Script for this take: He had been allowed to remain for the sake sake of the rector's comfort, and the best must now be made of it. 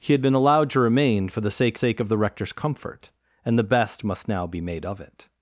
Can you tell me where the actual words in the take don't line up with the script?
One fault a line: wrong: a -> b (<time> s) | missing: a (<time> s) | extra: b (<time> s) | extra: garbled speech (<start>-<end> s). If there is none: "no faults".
no faults